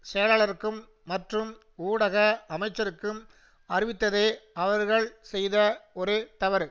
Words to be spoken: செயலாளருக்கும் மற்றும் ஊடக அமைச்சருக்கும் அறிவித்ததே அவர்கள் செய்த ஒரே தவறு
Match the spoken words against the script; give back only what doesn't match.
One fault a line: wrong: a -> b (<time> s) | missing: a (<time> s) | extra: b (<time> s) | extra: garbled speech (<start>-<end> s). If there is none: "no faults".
no faults